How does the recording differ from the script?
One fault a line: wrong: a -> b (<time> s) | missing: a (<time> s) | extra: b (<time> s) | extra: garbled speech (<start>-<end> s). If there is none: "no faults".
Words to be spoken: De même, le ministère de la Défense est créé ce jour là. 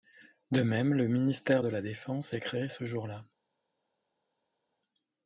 no faults